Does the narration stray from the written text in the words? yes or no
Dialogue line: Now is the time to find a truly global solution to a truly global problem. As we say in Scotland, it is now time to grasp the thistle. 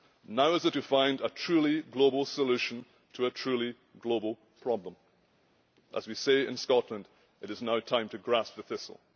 yes